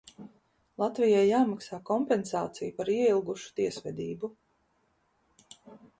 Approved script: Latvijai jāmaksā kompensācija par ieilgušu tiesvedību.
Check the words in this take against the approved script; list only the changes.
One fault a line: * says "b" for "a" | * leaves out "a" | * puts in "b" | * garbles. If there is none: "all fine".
all fine